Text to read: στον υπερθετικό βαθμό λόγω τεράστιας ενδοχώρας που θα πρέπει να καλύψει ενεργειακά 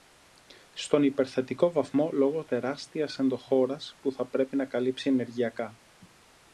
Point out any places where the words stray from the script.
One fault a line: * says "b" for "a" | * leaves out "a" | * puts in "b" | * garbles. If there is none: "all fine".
all fine